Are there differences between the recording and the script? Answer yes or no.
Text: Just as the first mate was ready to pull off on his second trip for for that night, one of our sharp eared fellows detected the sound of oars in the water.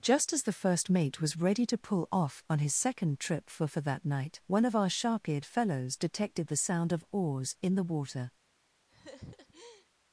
no